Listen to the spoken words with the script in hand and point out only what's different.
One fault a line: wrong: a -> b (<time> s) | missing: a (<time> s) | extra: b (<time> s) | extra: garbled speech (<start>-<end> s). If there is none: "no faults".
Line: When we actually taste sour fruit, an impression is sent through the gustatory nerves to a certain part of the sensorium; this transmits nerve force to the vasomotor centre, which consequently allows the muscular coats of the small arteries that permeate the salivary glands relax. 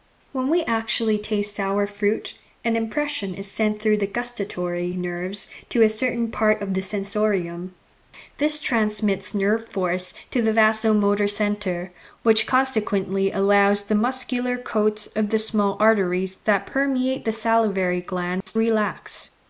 no faults